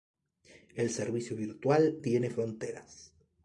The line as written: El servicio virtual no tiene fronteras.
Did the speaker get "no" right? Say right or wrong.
wrong